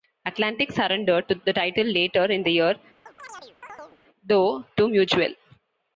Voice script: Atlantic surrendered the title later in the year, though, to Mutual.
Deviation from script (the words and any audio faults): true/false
true